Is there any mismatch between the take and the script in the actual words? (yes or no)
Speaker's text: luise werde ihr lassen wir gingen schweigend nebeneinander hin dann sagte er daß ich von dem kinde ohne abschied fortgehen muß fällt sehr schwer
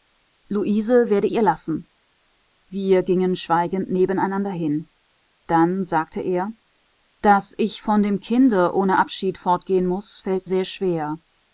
no